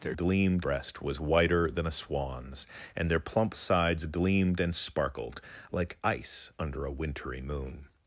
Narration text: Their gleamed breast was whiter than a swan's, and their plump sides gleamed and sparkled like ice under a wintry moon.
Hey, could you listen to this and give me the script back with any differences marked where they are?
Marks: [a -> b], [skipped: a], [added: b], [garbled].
Their gleamed breast was whiter than a swan's, and their plump sides gleamed and sparkled like ice under a wintry moon.